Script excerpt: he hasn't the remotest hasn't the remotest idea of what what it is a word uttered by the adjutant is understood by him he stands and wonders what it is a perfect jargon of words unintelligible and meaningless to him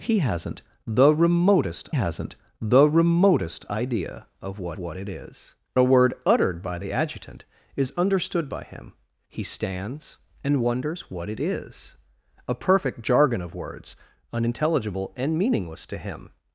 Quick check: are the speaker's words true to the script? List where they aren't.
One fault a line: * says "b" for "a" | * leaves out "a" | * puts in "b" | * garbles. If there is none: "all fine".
all fine